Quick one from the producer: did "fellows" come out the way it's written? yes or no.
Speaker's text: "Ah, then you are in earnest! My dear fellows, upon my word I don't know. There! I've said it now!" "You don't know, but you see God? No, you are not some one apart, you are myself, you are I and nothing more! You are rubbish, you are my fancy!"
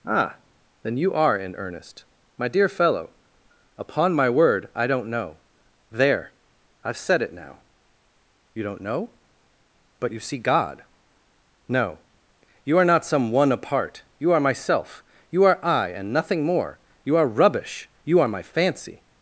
no